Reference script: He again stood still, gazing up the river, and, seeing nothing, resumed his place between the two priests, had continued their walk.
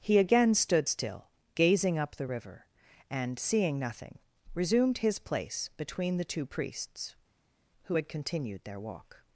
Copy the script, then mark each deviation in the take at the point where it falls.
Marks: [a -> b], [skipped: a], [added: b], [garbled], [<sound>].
He again stood still, gazing up the river, and, seeing nothing, resumed his place between the two priests, [added: who] had continued their walk.